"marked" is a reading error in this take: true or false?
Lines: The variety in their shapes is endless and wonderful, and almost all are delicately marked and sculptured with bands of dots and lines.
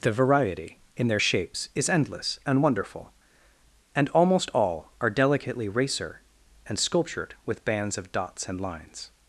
true